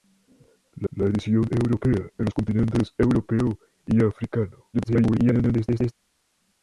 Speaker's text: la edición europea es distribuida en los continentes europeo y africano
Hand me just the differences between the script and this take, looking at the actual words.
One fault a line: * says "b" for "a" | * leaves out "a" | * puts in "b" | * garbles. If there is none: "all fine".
* puts in "la"
* leaves out "es distribuida"
* garbles